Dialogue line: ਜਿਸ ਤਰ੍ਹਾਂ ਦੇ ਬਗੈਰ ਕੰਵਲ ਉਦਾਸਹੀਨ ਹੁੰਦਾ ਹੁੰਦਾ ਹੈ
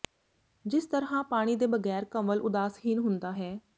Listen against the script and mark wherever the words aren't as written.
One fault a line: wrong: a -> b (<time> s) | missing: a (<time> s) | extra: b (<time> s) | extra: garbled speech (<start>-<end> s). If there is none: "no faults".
extra: ਪਾਣੀ (1.2 s)
missing: ਹੁੰਦਾ (3.3 s)